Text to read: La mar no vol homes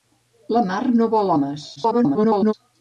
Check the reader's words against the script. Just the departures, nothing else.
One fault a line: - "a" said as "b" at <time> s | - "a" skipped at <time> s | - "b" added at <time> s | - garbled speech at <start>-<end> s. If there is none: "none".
- garbled speech at 1.8-2.5 s